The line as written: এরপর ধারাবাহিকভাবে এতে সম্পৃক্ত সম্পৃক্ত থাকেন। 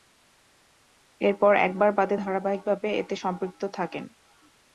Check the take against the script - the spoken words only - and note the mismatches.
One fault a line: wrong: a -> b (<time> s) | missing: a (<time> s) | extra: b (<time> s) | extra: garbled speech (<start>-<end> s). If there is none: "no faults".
extra: একবার বাদে (1.7 s)
missing: সম্পৃক্ত (3.6 s)